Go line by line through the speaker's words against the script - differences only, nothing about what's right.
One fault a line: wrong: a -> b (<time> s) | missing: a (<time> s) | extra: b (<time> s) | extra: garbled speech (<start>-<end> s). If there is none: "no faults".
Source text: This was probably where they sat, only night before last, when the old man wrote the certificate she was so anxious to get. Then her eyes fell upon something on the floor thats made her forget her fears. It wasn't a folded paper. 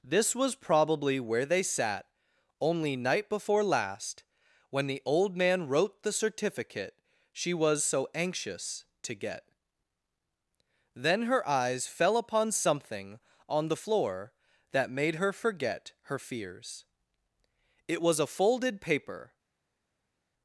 wrong: thats -> that (14.7 s)
wrong: wasn't -> was (18.0 s)